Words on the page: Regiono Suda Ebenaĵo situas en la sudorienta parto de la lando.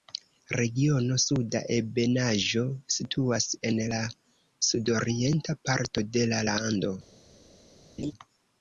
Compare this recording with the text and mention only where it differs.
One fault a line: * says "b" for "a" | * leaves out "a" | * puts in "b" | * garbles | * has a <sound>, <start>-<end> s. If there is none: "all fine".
* has a laugh, 8.0-8.1 s